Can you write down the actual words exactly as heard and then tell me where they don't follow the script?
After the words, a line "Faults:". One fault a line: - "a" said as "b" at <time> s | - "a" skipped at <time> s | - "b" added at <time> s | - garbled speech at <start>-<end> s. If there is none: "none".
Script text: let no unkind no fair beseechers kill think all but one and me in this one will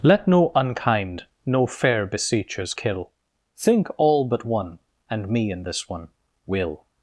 let no unkind no fair beseechers kill think all but one and me in this one will
Faults:
none